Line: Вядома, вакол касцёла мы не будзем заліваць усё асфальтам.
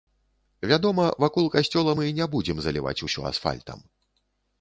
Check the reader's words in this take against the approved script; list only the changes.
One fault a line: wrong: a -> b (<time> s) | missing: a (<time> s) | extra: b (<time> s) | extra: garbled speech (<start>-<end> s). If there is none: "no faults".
no faults